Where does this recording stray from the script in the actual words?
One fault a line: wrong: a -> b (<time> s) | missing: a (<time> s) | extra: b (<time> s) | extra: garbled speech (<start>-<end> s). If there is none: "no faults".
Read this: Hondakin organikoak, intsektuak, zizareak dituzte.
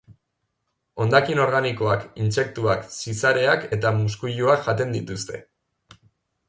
extra: eta muskuiluak jaten (3.8 s)